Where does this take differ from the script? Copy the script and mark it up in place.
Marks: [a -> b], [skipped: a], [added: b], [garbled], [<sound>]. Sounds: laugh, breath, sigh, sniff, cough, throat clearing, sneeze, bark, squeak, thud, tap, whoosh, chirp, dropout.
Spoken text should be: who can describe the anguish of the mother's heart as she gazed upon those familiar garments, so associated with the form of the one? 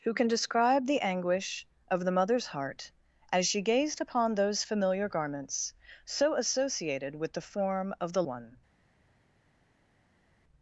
who can describe the anguish of the mother's heart as she gazed upon those familiar garments, so associated with the form of the one?